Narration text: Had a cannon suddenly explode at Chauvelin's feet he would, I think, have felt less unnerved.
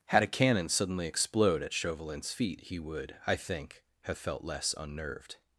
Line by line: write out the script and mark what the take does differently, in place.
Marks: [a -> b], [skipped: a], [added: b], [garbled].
Had a cannon suddenly explode at Chauvelin's feet he would, I think, have felt less unnerved.